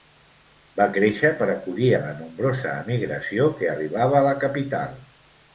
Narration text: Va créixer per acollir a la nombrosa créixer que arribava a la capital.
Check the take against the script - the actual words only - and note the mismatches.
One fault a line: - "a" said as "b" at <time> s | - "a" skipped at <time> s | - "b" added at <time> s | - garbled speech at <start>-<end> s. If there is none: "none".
- "créixer" said as "emigració" at 2.8 s